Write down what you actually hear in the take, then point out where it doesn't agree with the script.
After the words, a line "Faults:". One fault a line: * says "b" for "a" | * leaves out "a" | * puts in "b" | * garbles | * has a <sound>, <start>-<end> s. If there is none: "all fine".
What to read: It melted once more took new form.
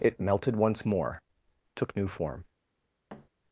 It melted once more took new form.
Faults:
* has a thud, 3.1-3.3 s